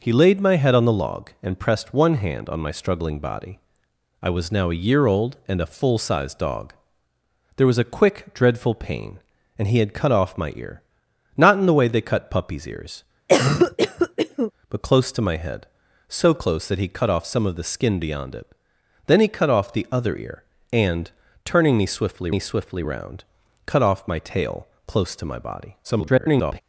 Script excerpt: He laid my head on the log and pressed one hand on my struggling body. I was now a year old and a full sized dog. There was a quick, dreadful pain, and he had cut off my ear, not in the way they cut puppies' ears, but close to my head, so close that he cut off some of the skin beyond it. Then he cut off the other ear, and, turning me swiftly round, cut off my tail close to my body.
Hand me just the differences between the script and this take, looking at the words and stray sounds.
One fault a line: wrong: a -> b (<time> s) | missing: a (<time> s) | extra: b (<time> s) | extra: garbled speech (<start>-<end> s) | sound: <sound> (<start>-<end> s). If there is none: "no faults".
sound: cough (13.3-14.5 s)
extra: me swiftly (22.3 s)
extra: garbled speech (25.8-26.6 s)